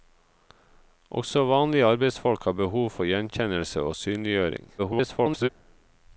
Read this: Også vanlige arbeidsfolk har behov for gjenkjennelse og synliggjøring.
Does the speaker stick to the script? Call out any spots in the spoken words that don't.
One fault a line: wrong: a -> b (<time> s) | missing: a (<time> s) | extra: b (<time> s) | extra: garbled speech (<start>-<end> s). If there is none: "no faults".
extra: garbled speech (4.8-5.5 s)